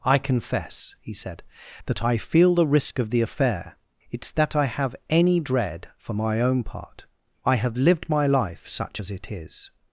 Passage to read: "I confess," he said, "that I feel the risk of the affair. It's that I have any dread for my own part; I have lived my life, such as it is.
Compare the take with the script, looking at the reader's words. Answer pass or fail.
pass